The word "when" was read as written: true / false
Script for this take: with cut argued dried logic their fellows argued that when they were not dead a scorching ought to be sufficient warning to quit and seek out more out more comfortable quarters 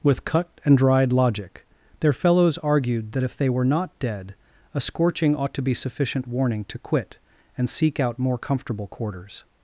false